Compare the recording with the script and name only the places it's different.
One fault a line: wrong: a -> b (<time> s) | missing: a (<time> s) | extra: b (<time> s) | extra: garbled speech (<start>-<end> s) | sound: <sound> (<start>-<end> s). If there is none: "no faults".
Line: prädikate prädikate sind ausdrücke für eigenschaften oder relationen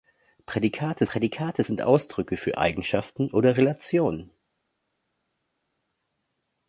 no faults